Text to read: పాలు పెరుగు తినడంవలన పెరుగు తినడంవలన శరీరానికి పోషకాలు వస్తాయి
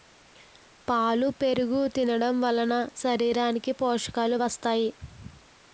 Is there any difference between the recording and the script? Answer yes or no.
yes